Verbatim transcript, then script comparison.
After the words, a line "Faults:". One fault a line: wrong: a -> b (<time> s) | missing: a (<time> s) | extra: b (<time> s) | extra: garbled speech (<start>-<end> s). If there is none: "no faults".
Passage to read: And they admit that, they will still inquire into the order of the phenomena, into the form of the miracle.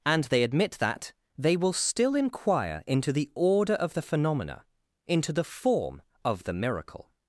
And they admit that, they will still inquire into the order of the phenomena, into the form of the miracle.
Faults:
no faults